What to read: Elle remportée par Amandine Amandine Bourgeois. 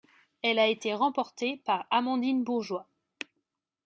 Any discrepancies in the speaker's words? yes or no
yes